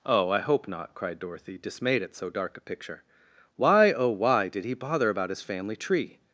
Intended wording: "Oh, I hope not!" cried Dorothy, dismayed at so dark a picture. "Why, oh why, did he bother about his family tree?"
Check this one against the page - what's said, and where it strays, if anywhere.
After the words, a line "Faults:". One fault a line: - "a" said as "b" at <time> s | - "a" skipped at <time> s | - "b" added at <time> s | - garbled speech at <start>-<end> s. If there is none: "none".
"Oh, I hope not!" cried Dorothy, dismayed at so dark a picture. "Why, oh why, did he bother about his family tree?"
Faults:
none